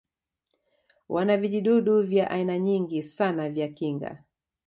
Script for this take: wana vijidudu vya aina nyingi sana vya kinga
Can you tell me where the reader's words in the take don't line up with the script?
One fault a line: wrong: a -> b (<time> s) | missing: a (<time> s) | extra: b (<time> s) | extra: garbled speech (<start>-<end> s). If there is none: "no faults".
no faults